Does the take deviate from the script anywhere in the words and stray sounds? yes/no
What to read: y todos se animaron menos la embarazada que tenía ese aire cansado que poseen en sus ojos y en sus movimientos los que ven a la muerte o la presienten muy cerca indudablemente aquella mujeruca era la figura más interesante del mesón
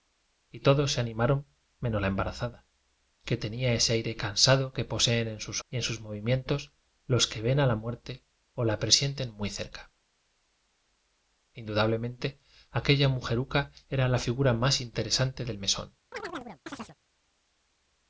yes